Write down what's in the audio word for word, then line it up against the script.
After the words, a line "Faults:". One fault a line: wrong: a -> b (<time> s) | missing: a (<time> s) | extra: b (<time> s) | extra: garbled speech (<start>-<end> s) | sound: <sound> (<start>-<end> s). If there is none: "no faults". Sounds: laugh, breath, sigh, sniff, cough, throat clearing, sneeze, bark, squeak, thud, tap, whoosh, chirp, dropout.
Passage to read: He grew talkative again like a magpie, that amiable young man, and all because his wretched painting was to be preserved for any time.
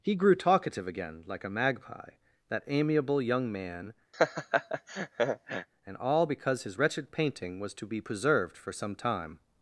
He grew talkative again like a magpie, that amiable young man, and all because his wretched painting was to be preserved for some time.
Faults:
sound: laugh (4.1-5.7 s)
wrong: any -> some (8.7 s)